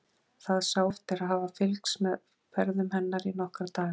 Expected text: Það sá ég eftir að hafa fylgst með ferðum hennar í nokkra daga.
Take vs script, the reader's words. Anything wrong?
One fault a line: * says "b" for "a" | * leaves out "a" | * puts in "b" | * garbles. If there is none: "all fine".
* leaves out "ég"